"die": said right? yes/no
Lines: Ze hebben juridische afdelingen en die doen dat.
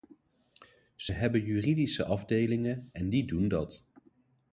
yes